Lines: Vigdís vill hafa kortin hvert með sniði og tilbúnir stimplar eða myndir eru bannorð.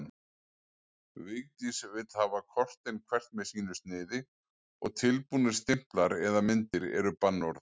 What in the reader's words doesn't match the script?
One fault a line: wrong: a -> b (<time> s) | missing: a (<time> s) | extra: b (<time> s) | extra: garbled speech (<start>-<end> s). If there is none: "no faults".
extra: sínu (3.5 s)